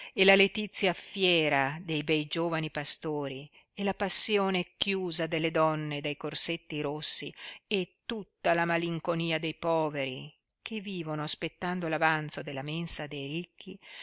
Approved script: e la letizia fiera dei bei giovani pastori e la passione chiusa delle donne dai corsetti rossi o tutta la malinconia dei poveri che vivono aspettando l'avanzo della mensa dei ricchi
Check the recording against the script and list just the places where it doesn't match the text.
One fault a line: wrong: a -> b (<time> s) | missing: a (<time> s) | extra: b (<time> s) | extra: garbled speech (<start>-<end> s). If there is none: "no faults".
wrong: o -> e (7.7 s)